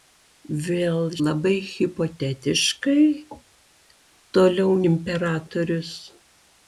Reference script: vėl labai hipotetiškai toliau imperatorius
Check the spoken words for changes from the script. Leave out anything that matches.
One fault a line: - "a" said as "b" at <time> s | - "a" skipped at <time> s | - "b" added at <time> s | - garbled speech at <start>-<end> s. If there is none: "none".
none